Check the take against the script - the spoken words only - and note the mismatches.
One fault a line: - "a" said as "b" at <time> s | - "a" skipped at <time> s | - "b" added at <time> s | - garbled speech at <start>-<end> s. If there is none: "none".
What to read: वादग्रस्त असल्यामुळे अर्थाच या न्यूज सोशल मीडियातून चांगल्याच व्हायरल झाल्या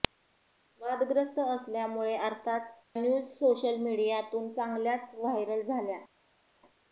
- "या" skipped at 2.7 s